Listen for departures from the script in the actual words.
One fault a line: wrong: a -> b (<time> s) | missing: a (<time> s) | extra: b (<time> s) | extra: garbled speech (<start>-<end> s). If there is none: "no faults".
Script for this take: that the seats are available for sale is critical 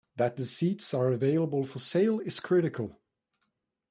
no faults